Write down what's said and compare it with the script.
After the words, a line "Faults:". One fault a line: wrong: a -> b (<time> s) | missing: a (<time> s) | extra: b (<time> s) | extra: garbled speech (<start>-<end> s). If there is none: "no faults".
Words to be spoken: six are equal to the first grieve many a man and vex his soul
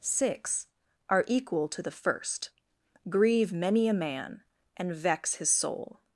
six are equal to the first grieve many a man and vex his soul
Faults:
no faults